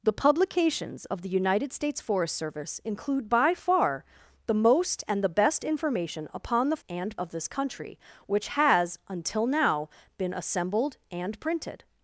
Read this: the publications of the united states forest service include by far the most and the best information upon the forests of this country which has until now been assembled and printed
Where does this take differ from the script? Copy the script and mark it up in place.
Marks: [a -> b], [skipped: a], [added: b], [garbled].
the publications of the united states forest service include by far the most and the best information upon the [forests -> and] of this country which has until now been assembled and printed